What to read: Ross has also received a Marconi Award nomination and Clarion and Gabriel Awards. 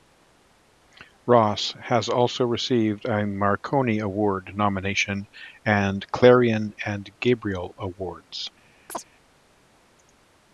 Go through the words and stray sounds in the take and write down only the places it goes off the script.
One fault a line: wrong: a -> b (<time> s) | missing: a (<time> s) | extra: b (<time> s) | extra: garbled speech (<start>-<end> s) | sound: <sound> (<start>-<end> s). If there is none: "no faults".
sound: chirp (8.9-9.0 s)